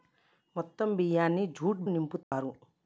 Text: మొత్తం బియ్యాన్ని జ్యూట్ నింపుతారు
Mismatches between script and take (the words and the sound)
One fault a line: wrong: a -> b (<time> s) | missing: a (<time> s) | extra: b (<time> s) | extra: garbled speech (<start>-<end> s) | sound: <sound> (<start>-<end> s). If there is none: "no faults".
sound: dropout (2.2-2.3 s)